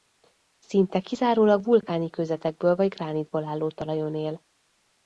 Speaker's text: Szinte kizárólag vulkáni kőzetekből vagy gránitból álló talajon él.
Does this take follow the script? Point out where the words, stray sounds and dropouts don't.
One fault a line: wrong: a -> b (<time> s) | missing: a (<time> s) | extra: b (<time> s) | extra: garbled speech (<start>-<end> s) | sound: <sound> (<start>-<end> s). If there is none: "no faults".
no faults